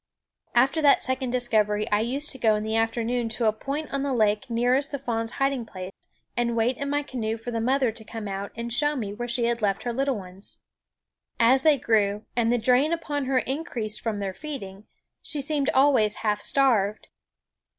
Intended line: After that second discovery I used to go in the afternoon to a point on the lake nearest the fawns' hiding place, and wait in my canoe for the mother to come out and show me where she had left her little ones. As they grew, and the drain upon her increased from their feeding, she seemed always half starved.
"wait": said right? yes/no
yes